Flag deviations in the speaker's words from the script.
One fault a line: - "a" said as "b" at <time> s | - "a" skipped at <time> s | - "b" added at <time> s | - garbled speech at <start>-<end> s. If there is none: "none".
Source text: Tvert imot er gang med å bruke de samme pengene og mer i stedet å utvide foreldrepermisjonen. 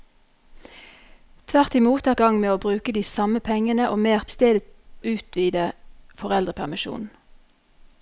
none